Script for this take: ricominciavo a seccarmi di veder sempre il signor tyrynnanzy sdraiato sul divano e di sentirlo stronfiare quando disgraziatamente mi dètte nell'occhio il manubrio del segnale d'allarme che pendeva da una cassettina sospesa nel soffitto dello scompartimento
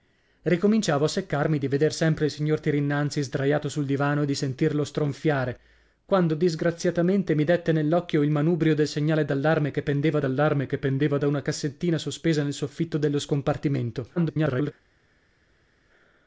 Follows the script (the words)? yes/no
no